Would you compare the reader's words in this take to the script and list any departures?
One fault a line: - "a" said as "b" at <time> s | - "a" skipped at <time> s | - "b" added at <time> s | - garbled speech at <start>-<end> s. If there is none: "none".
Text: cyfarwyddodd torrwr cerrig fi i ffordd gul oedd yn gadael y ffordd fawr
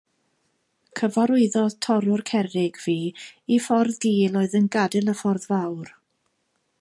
none